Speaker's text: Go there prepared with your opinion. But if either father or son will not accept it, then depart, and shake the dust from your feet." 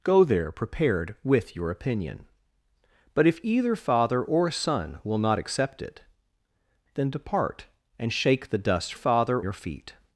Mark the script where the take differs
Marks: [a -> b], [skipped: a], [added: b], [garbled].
Go there prepared with your opinion. But if either father or son will not accept it, then depart, and shake the dust [from -> father] your feet."